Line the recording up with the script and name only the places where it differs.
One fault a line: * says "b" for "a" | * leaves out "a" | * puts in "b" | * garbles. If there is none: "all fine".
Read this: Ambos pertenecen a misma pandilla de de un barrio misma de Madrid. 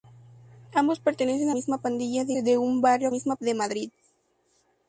all fine